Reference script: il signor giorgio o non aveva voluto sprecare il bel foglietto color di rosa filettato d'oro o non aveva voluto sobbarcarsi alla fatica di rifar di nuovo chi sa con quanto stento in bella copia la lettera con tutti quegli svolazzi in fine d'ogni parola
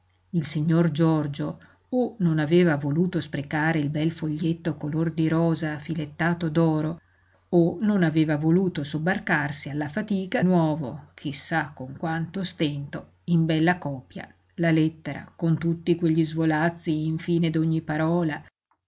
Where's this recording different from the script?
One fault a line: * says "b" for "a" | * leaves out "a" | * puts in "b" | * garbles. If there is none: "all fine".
* leaves out "di rifar di"